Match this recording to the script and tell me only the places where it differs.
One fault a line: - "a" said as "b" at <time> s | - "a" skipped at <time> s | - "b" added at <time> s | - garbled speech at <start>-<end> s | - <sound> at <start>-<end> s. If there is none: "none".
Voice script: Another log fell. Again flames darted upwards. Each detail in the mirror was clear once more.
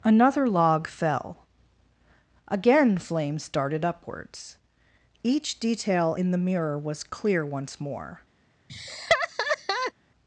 - laugh at 8.7-9.9 s